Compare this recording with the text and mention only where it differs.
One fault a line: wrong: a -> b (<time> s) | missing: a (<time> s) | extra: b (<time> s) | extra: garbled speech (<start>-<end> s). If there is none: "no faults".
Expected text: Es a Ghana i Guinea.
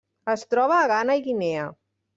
extra: troba (0.5 s)